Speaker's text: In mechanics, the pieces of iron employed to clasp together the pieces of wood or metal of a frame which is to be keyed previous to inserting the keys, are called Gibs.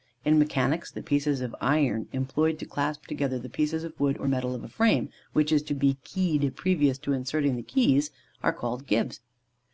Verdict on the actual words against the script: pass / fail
pass